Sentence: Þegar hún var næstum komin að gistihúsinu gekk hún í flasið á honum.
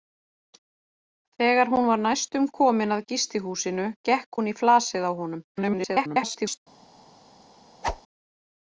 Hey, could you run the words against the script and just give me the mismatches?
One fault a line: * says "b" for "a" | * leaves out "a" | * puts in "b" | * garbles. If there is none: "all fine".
* garbles